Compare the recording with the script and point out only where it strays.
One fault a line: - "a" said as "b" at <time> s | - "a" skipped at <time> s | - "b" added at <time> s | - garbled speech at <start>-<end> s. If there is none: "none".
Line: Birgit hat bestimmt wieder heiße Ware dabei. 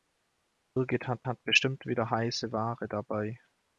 - "hat" added at 1.3 s